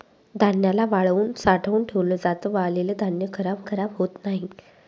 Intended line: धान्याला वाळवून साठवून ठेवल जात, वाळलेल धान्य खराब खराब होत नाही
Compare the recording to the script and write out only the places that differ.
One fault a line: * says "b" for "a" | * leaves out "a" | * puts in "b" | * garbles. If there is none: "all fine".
all fine